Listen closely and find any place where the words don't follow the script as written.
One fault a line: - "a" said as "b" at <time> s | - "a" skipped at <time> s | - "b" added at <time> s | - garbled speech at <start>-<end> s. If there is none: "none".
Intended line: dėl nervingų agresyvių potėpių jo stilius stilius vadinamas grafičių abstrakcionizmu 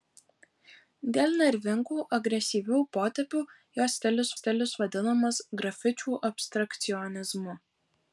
none